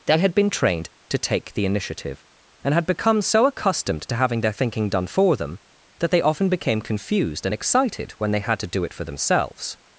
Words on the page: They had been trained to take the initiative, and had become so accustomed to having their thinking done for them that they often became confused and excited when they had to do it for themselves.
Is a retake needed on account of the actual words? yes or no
no